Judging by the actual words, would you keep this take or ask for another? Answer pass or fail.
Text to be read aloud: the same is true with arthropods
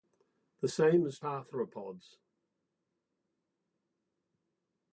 fail